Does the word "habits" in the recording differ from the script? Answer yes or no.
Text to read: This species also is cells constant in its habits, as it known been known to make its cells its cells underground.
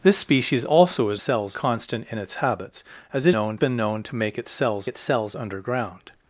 no